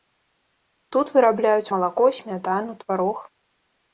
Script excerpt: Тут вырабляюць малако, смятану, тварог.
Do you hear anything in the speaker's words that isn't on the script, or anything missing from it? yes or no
no